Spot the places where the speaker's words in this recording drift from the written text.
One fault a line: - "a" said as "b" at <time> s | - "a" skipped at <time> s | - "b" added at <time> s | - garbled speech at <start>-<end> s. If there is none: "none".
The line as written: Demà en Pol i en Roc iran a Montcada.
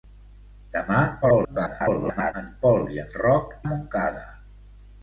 - garbled speech at 1.2-2.3 s
- "iran" skipped at 3.6 s